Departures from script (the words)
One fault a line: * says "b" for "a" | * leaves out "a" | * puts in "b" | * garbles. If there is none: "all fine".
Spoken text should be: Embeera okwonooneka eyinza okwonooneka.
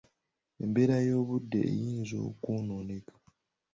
* says "y'obudde" for "okwonooneka"